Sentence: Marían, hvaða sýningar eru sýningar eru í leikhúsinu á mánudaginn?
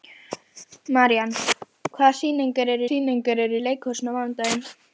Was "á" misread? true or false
false